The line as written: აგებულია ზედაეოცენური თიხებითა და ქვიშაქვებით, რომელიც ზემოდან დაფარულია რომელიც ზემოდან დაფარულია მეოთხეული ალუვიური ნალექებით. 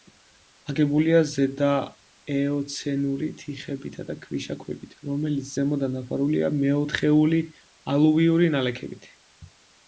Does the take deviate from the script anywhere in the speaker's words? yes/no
yes